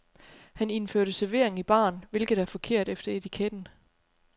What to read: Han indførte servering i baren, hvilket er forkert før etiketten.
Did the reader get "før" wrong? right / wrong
wrong